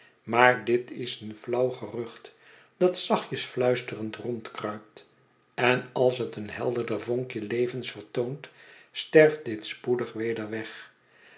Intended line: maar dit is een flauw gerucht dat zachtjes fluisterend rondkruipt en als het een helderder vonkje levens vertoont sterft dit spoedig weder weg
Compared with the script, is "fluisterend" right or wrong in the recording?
right